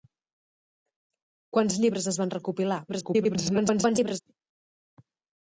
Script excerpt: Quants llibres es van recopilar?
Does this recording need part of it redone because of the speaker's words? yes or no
yes